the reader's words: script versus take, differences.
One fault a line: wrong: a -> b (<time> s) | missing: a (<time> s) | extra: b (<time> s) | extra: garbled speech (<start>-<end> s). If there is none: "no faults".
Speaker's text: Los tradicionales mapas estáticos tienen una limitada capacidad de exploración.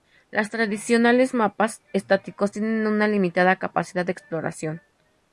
no faults